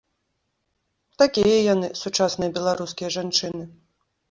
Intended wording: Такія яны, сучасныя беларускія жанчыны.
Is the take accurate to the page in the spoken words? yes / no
yes